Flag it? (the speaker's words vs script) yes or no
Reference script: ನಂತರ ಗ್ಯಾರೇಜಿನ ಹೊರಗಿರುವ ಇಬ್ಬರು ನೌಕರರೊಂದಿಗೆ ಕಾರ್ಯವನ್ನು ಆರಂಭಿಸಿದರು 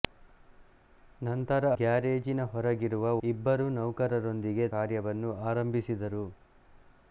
no